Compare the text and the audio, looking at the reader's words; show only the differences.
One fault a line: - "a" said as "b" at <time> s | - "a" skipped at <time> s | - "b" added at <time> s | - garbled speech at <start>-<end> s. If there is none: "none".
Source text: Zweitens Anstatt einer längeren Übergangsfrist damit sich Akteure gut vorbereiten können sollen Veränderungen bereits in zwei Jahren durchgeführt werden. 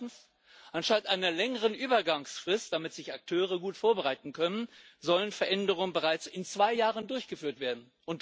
none